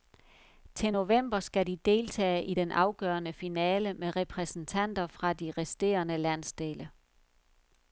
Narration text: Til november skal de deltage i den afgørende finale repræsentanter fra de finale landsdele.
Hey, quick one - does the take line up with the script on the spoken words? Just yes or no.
no